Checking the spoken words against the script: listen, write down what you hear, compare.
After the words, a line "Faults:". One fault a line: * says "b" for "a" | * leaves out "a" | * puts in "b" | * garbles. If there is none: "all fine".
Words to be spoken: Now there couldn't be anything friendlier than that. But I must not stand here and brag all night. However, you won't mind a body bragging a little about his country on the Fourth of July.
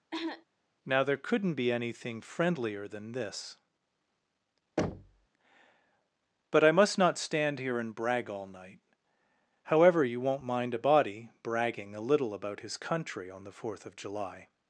Now there couldn't be anything friendlier than this. But I must not stand here and brag all night. However, you won't mind a body bragging a little about his country on the Fourth of July.
Faults:
* says "this" for "that"